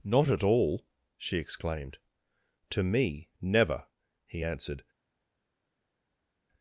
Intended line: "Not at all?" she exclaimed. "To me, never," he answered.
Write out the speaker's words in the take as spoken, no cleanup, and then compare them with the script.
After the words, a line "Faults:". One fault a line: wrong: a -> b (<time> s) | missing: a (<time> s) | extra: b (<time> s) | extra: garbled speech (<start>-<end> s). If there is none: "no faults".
"Not at all?" she exclaimed. "To me, never," he answered.
Faults:
no faults